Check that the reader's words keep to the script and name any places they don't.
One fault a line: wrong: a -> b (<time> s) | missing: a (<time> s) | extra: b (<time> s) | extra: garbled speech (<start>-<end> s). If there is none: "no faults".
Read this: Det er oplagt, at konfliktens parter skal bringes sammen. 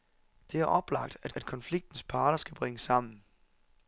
extra: at (1.3 s)